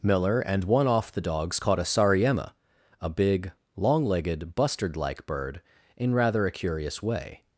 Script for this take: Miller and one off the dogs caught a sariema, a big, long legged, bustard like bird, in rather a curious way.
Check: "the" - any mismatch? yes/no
no